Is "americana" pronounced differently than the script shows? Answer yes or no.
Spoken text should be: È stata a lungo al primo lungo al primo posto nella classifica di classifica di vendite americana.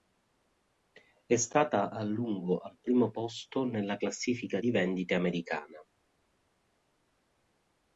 no